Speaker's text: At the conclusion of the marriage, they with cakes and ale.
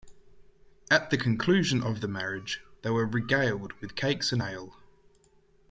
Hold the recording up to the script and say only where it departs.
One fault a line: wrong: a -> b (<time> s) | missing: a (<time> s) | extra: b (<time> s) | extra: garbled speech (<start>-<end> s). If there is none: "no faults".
extra: were regaled (2.9 s)